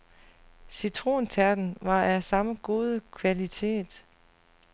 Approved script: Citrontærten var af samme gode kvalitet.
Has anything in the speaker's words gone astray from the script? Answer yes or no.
no